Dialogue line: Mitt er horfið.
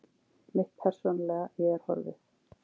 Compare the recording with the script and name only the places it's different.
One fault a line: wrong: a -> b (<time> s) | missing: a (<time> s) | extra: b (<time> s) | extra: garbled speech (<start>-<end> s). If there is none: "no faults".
extra: persónulega ég (0.8 s)